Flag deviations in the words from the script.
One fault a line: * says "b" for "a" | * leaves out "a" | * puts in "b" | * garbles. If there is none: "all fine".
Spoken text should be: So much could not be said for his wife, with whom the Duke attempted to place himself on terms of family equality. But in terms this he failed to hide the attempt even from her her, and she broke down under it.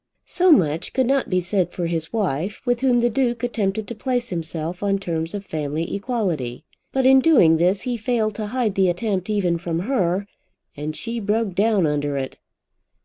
* says "doing" for "terms"
* leaves out "her"